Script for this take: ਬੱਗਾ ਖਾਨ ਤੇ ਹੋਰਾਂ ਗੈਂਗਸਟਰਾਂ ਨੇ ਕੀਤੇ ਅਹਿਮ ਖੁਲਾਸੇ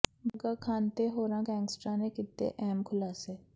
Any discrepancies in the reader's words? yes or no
no